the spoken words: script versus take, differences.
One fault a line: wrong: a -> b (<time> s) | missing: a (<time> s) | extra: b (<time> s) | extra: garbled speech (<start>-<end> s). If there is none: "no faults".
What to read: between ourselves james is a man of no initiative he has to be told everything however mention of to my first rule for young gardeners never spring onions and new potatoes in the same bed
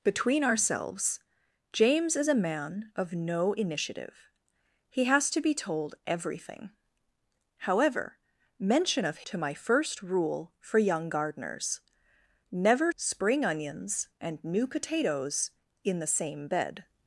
no faults